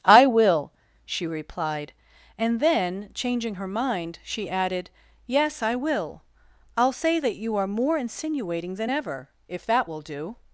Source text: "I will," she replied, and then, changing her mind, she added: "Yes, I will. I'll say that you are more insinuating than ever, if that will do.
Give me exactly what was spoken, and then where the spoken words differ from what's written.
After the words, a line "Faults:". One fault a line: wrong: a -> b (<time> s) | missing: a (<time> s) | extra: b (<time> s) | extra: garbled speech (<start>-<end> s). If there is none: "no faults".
"I will," she replied, and then, changing her mind, she added: "Yes, I will. I'll say that you are more insinuating than ever, if that will do.
Faults:
no faults